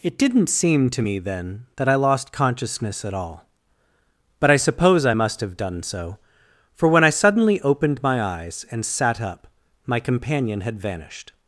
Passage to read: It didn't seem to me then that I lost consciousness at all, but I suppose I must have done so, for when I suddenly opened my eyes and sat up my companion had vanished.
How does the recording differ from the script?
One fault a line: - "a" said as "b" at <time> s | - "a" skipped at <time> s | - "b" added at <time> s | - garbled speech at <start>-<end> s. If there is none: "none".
none